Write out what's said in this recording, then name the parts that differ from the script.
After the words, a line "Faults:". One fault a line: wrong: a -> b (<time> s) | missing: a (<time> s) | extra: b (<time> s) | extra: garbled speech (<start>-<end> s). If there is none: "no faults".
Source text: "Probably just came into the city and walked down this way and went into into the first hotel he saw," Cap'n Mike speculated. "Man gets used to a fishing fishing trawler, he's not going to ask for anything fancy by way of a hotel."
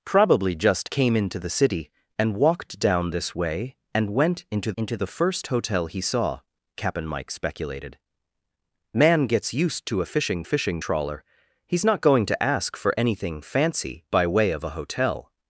"Probably just came into the city and walked down this way and went into into the first hotel he saw," Cap'n Mike speculated. "Man gets used to a fishing fishing trawler, he's not going to ask for anything fancy by way of a hotel."
Faults:
no faults